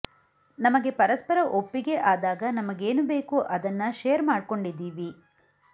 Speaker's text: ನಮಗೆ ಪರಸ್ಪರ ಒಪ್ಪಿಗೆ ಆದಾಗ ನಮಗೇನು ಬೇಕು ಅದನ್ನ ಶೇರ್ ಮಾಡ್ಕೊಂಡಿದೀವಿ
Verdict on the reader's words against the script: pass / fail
pass